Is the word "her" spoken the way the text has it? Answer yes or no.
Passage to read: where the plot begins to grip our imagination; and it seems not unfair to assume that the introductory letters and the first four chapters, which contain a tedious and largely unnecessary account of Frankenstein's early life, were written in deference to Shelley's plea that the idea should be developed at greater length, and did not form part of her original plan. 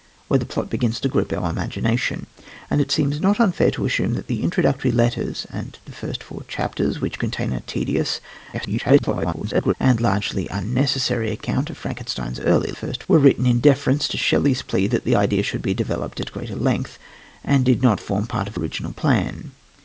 no